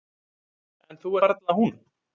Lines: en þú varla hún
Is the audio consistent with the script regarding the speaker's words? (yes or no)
yes